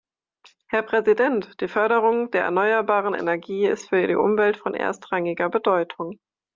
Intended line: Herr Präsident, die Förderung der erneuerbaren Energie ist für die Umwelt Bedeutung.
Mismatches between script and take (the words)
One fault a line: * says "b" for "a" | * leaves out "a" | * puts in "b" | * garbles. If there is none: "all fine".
* puts in "von erstrangiger"